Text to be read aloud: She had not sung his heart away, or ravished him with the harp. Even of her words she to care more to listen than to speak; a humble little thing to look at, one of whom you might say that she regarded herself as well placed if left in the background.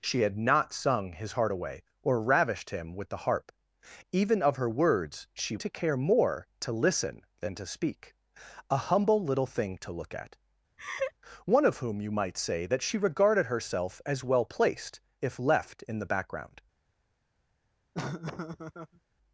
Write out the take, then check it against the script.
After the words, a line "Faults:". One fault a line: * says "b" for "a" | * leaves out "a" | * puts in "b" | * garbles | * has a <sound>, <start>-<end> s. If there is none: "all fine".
She had not sung his heart away, or ravished him with the harp. Even of her words she to care more to listen than to speak; a humble little thing to look at, one of whom you might say that she regarded herself as well placed if left in the background.
Faults:
* has a laugh, 10.8-11.1 s
* has a laugh, 17.9-19.0 s